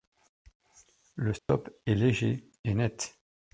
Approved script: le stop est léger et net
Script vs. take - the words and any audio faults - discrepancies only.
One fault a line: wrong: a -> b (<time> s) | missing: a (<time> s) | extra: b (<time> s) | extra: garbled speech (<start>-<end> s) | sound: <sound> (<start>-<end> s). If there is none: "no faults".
sound: dropout (1.4-1.5 s)